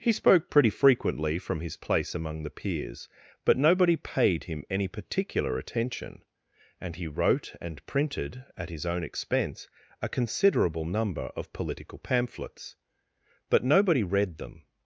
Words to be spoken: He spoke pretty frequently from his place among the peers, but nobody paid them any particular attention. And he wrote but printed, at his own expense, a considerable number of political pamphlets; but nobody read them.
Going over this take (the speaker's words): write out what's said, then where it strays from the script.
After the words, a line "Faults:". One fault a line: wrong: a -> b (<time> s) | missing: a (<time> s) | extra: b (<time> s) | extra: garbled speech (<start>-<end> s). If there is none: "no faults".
He spoke pretty frequently from his place among the peers, but nobody paid him any particular attention. And he wrote and printed, at his own expense, a considerable number of political pamphlets; but nobody read them.
Faults:
wrong: them -> him (4.5 s)
wrong: but -> and (7.6 s)